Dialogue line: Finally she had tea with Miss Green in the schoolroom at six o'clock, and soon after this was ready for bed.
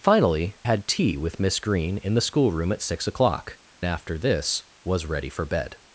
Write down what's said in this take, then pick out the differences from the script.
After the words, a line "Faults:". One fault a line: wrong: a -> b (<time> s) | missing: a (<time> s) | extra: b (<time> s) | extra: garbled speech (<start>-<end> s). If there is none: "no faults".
Finally had tea with Miss Green in the schoolroom at six o'clock, after this was ready for bed.
Faults:
missing: she (0.6 s)
missing: and soon (3.6 s)